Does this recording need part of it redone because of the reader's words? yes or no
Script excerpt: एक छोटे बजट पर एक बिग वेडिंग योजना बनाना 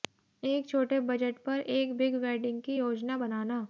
yes